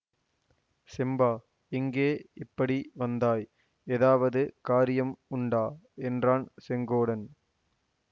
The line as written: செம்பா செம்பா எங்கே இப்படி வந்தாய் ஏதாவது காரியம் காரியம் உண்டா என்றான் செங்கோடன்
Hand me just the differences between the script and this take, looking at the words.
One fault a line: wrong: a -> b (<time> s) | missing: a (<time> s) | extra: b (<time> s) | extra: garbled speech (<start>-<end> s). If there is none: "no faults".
missing: செம்பா (1.3 s)
missing: காரியம் (5.2 s)